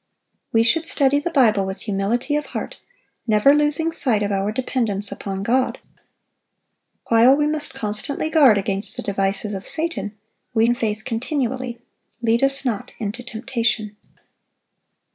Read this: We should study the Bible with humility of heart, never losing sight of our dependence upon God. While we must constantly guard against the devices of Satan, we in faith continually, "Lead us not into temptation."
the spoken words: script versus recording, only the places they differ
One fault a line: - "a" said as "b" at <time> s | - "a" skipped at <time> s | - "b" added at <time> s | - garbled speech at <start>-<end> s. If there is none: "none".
none